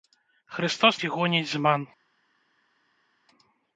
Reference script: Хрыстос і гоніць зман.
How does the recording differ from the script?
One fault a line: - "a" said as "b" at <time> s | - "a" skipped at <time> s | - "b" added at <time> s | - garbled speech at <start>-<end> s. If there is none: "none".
none